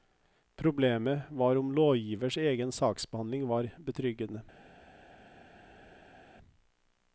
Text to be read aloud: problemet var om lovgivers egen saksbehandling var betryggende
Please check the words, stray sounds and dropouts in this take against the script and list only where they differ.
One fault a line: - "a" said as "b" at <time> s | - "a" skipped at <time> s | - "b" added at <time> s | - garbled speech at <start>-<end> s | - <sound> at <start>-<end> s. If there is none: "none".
none